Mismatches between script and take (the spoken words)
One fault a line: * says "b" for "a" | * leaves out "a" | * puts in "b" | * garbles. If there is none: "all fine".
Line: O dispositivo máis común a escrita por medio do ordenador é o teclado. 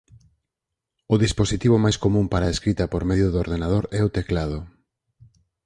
* puts in "para"